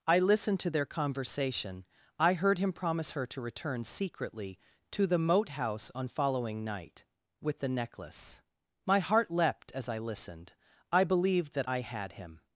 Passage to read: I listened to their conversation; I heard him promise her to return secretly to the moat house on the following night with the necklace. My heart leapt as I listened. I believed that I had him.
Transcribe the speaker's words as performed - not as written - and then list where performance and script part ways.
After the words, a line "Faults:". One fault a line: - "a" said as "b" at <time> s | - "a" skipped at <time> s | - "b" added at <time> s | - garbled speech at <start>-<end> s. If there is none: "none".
I listened to their conversation; I heard him promise her to return secretly to the moat house on following night with the necklace. My heart leapt as I listened. I believed that I had him.
Faults:
- "the" skipped at 6.1 s